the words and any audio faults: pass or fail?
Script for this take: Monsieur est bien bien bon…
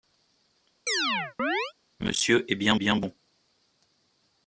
fail